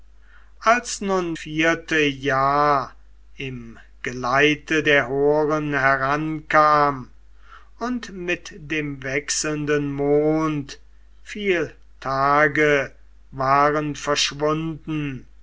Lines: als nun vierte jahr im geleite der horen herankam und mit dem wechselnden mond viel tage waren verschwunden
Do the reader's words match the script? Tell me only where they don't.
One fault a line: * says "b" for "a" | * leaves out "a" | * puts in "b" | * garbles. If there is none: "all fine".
all fine